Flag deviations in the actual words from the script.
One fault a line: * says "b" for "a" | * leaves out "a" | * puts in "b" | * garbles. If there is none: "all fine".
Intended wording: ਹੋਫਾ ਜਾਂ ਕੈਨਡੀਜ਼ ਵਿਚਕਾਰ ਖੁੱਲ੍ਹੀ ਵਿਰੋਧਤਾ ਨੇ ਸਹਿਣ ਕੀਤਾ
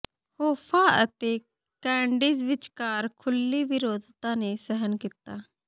* says "ਅਤੇ" for "ਜਾਂ"